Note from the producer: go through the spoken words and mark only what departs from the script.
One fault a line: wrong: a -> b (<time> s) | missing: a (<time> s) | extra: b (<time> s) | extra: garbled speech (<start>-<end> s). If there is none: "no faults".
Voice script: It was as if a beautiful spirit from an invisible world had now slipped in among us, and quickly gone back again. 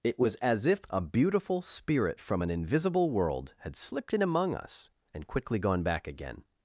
missing: now (3.7 s)